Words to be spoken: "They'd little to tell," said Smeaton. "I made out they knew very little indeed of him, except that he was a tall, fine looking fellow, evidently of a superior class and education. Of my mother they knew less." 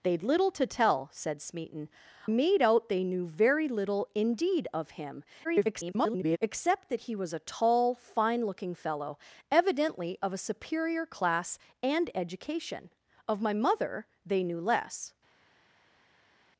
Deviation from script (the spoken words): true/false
true